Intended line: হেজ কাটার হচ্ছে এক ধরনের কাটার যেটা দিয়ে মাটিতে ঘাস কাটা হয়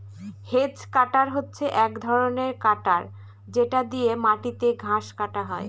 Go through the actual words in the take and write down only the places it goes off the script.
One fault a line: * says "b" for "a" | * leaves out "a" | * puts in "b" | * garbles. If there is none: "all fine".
all fine